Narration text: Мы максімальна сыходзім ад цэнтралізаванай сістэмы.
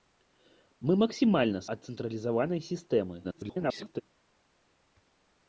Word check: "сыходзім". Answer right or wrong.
wrong